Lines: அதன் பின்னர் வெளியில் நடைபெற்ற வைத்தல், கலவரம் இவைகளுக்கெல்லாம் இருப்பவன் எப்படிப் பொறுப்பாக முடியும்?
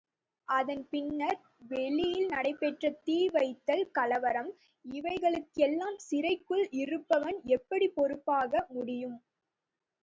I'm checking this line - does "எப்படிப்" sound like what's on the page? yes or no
yes